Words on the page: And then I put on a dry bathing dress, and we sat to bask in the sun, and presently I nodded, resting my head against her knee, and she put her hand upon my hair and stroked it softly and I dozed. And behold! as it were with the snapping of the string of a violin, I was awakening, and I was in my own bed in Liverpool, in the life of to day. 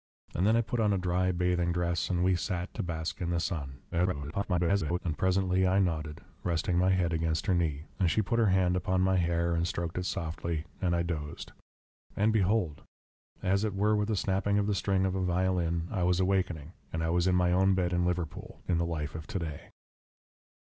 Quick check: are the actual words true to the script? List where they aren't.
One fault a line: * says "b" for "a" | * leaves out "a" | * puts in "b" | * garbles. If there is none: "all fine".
* garbles